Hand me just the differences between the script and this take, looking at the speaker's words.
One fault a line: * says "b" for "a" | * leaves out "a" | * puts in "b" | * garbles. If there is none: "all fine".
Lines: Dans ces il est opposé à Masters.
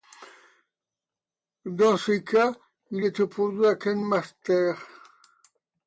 * puts in "cas"
* puts in "Ken"